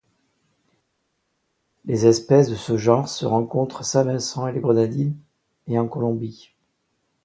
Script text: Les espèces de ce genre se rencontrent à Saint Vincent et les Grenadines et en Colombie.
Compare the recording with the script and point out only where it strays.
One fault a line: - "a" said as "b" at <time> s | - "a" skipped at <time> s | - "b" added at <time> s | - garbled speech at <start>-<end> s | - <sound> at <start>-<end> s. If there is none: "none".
none